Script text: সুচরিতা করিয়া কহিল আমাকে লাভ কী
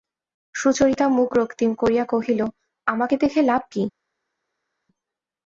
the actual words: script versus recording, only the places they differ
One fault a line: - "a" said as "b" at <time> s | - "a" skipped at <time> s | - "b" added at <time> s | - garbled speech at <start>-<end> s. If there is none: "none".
- "মুখ রক্তিম" added at 1.1 s
- "দেখে" added at 3.2 s